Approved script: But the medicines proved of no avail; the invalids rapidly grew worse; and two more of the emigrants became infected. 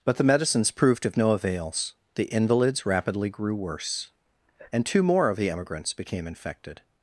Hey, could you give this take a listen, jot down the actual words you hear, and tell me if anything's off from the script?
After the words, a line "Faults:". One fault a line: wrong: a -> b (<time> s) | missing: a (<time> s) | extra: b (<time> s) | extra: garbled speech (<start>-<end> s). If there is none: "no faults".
But the medicines proved of no avails; the invalids rapidly grew worse; and two more of the emigrants became infected.
Faults:
wrong: avail -> avails (1.3 s)